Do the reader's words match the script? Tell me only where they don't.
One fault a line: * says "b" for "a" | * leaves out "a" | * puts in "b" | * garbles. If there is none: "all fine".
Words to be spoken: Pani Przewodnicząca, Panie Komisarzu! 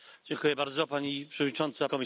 * leaves out "Panie"